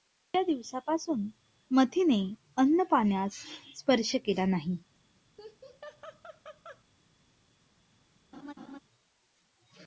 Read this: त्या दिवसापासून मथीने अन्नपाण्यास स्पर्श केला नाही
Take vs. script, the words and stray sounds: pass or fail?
fail